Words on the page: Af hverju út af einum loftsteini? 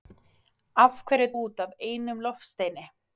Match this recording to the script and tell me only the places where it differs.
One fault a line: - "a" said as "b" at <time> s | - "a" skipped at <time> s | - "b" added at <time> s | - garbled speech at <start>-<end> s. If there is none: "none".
none